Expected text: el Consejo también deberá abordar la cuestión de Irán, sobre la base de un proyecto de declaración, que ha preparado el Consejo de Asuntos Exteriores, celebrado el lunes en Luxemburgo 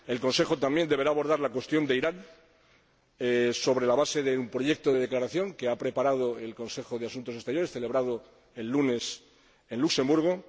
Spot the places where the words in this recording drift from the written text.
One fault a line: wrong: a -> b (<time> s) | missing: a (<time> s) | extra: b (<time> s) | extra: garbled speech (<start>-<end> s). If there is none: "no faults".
no faults